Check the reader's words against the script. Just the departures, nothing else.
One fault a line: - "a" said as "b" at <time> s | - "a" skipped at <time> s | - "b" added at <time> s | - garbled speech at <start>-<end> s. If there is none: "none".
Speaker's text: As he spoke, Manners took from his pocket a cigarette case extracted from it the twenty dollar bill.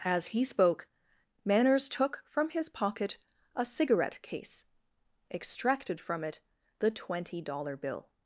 none